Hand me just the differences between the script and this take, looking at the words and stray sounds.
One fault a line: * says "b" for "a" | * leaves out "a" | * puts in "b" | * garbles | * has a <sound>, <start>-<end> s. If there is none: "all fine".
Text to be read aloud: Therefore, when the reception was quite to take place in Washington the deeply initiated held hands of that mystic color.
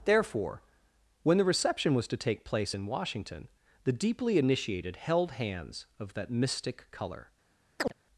* leaves out "quite"
* has a chirp, 7.8-7.9 s